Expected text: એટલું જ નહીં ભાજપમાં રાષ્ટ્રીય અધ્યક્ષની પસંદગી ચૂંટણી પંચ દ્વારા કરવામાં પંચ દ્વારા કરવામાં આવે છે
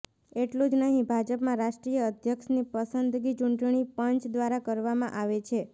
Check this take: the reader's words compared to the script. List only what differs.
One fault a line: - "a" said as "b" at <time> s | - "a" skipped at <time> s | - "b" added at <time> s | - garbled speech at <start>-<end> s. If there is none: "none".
- "પંચ દ્વારા કરવામાં" skipped at 5.2 s